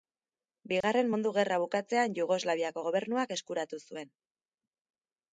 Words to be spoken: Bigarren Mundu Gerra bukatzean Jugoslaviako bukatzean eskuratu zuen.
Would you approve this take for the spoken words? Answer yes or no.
no